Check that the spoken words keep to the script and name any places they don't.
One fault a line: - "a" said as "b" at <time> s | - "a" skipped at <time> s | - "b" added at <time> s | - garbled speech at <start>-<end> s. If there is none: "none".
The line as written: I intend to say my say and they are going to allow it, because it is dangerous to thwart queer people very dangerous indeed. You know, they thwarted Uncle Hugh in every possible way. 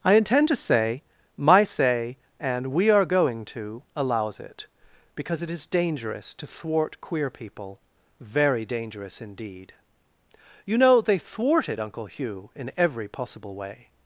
- "they" said as "we" at 2.7 s
- "allow" said as "allows" at 4.0 s